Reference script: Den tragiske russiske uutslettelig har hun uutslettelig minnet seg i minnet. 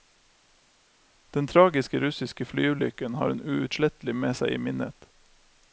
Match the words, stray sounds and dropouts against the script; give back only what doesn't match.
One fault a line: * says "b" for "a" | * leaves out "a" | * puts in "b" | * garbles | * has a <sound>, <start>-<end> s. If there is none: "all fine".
* says "flyulykken" for "uutslettelig"
* says "med" for "minnet"